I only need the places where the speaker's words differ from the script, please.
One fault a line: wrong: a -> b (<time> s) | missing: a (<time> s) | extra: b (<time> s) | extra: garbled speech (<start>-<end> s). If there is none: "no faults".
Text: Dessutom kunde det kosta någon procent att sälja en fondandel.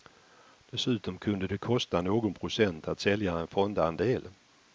no faults